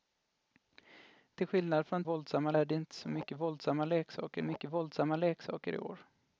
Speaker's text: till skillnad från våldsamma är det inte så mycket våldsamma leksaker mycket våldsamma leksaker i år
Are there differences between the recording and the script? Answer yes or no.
no